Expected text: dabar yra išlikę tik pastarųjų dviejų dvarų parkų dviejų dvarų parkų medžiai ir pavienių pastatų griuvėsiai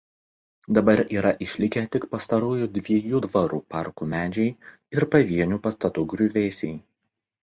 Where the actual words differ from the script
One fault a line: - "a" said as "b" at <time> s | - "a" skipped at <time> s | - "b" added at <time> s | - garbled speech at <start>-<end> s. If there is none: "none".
- "dviejų dvarų parkų" skipped at 4.1 s